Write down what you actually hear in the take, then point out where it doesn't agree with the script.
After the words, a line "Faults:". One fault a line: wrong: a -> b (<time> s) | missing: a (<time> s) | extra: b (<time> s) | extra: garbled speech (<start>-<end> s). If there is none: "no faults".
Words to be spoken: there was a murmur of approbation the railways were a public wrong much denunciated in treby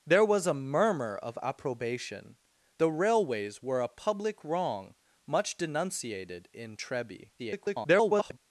there was a murmur of approbation the railways were a public wrong much denunciated in treby [garbled]
Faults:
extra: garbled speech (7.4-8.4 s)